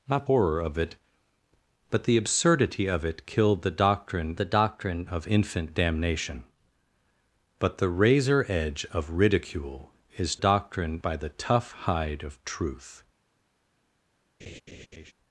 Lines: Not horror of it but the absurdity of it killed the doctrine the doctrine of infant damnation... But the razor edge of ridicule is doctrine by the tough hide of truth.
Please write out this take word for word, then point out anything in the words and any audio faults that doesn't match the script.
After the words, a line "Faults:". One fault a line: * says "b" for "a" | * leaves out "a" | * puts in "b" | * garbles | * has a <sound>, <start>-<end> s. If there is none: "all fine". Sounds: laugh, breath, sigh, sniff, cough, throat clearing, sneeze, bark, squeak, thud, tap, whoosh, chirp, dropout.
Not horror of it but the absurdity of it killed the doctrine the doctrine of infant damnation... But the razor edge of ridicule is doctrine by the tough hide of truth.
Faults:
* has a laugh, 14.4-15.1 s